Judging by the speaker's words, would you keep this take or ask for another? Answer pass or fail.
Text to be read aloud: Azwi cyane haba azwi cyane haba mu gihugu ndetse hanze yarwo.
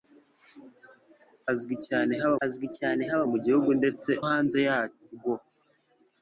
pass